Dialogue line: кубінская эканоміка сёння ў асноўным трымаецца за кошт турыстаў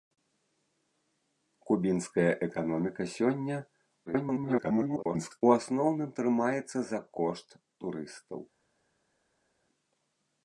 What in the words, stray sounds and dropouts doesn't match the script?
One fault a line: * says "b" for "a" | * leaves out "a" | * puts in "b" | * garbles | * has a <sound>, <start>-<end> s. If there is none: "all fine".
* garbles